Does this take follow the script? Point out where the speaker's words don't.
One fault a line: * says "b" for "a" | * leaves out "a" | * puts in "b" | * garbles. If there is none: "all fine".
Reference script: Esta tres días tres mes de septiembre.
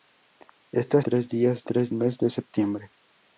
all fine